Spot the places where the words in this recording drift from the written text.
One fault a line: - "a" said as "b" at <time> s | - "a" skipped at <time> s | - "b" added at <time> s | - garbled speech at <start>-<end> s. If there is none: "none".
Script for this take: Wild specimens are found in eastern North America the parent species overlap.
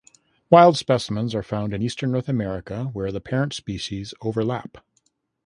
- "where" added at 2.9 s